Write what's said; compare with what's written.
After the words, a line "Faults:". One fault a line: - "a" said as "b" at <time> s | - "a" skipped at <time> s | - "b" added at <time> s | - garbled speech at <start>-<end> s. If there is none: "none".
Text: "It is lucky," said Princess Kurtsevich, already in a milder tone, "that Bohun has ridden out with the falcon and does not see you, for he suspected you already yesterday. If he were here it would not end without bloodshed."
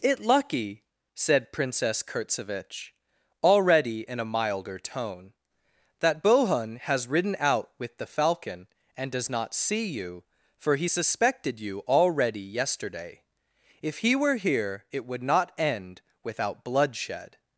"It lucky," said Princess Kurtsevich, already in a milder tone, "that Bohun has ridden out with the falcon and does not see you, for he suspected you already yesterday. If he were here it would not end without bloodshed."
Faults:
- "is" skipped at 0.2 s